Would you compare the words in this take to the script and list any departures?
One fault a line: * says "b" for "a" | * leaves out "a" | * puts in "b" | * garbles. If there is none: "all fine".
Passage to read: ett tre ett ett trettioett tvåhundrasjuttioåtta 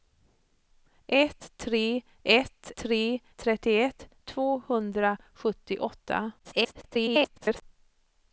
* says "tre" for "ett"
* garbles